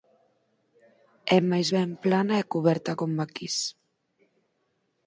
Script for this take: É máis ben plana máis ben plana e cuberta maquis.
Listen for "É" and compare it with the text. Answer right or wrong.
right